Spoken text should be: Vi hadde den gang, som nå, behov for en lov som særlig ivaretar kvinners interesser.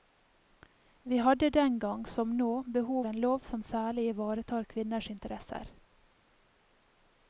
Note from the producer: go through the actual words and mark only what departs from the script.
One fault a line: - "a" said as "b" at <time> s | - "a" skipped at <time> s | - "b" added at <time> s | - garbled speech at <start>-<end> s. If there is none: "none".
- "for" skipped at 3.0 s